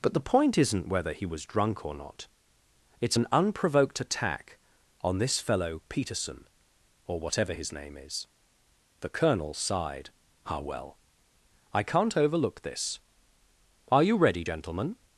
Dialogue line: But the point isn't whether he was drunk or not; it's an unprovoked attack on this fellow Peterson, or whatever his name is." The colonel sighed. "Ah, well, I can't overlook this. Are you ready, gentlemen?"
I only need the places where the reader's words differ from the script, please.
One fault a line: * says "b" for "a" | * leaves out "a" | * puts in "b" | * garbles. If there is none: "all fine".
all fine